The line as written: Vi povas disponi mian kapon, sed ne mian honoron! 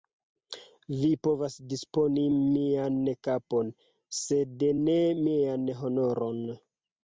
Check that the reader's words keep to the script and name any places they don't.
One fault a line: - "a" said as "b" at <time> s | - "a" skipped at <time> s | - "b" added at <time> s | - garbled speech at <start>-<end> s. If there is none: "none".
none